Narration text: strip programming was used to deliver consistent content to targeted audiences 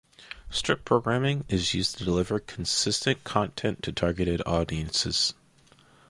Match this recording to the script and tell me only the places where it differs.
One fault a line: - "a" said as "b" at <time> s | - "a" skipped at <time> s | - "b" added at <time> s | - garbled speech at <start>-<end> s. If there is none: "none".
- "was" said as "is" at 1.5 s